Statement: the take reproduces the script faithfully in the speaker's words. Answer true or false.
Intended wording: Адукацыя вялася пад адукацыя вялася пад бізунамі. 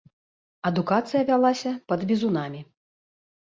false